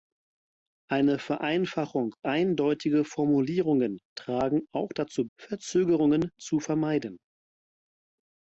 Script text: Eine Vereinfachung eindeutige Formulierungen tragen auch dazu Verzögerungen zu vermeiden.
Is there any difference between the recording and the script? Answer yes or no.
no